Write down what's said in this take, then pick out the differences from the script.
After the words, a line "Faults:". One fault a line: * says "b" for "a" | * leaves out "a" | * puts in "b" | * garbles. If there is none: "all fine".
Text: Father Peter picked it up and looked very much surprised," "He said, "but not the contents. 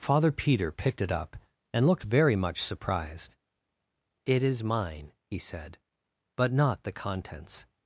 Father Peter picked it up and looked very much surprised. "It is mine," he said, "but not the contents.
Faults:
* puts in "It is mine"